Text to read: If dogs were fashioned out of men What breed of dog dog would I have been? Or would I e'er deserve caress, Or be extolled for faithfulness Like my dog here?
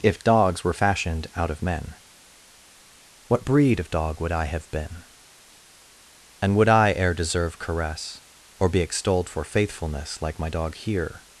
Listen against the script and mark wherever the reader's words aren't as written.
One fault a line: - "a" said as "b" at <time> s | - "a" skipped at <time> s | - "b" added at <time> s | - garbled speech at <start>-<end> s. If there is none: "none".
- "dog" skipped at 4.2 s
- "Or" said as "And" at 6.4 s